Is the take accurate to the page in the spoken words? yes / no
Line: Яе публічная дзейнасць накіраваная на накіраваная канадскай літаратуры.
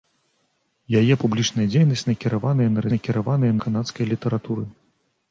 yes